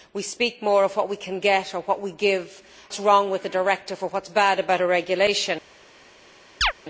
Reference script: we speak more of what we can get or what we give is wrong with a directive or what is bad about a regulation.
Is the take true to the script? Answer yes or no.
yes